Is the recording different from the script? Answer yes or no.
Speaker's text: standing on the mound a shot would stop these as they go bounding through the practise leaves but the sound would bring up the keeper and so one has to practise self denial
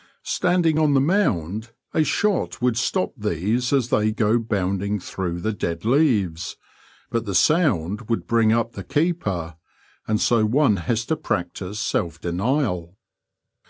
yes